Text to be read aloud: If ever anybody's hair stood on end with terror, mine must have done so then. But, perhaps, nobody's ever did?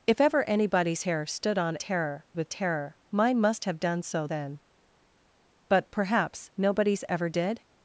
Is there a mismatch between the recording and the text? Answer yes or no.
yes